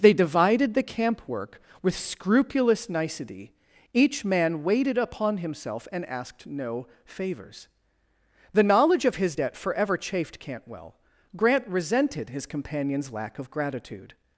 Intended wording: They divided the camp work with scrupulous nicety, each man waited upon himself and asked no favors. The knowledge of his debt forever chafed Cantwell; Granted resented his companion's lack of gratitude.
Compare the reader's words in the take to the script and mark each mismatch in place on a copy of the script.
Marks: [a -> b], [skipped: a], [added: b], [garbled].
They divided the camp work with scrupulous nicety, each man waited upon himself and asked no favors. The knowledge of his debt forever chafed Cantwell; [Granted -> Grant] resented his companion's lack of gratitude.